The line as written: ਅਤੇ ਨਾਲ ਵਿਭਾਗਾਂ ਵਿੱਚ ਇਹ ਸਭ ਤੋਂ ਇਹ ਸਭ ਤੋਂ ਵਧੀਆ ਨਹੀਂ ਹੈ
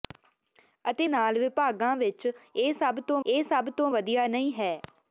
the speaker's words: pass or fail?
pass